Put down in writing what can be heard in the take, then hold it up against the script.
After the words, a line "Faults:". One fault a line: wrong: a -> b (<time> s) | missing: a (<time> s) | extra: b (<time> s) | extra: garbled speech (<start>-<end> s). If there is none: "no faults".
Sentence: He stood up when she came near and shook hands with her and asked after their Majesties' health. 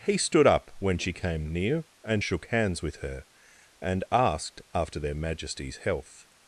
He stood up when she came near and shook hands with her and asked after their Majesties' health.
Faults:
no faults